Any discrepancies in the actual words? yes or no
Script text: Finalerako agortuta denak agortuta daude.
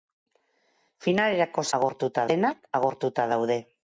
no